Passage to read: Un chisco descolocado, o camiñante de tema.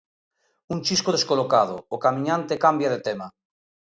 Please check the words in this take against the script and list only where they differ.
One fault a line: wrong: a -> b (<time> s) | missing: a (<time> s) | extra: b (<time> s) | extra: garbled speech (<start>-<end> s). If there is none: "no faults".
extra: cambia (2.6 s)